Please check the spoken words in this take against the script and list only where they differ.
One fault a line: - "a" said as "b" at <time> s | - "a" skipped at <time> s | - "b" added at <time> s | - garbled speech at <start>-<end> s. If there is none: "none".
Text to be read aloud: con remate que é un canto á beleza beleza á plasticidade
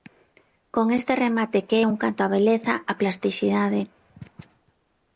- "este" added at 1.0 s
- "beleza" skipped at 2.7 s